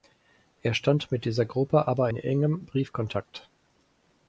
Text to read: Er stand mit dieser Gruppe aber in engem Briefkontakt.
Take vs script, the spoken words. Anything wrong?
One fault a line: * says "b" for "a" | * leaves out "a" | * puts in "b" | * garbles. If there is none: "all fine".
all fine